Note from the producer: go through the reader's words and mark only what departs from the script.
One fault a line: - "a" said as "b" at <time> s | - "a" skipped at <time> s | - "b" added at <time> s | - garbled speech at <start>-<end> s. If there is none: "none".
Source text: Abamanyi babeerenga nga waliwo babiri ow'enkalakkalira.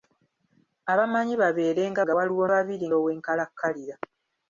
none